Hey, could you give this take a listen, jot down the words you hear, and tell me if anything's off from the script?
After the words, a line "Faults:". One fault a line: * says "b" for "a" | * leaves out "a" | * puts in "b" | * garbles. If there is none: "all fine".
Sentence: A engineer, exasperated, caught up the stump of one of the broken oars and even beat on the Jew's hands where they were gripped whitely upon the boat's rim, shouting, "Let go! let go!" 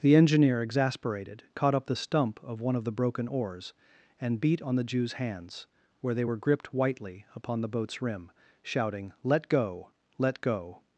The engineer, exasperated, caught up the stump of one of the broken oars and beat on the Jew's hands where they were gripped whitely upon the boat's rim, shouting, "Let go! let go!"
Faults:
* says "The" for "A"
* leaves out "even"